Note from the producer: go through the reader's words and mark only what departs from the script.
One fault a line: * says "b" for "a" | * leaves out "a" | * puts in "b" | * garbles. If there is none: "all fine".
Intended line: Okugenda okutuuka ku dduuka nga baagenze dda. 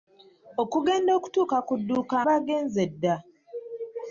* leaves out "nga"